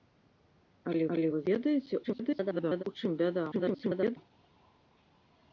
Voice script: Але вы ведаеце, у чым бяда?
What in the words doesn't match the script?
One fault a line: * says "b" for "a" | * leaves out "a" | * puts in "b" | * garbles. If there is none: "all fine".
* puts in "але"
* garbles
* garbles